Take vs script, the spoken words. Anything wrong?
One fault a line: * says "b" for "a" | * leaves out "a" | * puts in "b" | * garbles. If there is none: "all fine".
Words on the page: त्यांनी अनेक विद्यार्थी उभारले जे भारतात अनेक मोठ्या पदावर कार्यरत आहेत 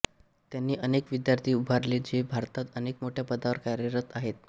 all fine